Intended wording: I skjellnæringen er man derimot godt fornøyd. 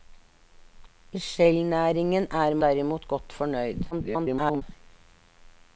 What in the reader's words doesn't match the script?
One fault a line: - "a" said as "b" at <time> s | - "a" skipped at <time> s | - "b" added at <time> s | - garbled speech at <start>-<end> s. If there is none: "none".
- "man" skipped at 2.5 s
- garbled speech at 3.9-4.6 s